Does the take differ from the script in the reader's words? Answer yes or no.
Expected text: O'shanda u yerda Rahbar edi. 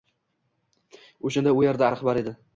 no